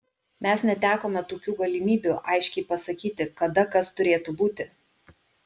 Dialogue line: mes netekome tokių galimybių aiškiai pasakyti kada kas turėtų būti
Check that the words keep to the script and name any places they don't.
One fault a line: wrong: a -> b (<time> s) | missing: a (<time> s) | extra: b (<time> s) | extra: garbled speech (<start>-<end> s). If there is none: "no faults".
no faults